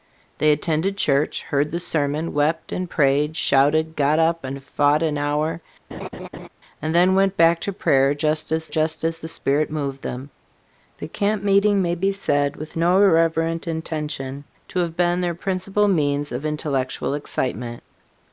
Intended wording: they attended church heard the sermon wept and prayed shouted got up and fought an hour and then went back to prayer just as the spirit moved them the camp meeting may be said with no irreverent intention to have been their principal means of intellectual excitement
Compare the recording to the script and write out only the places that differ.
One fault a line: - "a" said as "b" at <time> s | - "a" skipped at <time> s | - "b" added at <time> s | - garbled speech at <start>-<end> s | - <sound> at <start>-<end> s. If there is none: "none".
- laugh at 5.9-6.5 s
- "just as" added at 8.7 s